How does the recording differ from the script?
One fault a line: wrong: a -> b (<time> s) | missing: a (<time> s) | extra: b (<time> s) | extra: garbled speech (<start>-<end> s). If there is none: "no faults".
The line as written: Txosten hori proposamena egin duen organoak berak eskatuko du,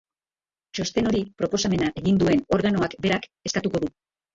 no faults